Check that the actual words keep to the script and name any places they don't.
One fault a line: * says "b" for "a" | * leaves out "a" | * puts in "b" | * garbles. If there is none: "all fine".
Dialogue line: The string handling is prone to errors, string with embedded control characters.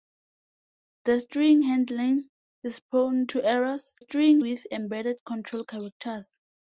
all fine